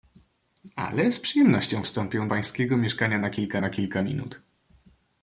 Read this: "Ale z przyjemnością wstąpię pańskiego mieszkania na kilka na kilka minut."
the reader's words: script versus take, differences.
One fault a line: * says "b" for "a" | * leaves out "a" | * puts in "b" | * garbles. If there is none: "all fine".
all fine